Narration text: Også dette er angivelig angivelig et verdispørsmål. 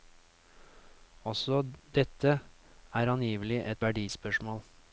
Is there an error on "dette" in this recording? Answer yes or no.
no